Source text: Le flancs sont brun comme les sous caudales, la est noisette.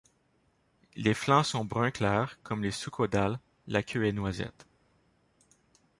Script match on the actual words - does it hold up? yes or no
no